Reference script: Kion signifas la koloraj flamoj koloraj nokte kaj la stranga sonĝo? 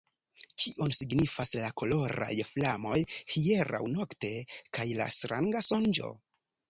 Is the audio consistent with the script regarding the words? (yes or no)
no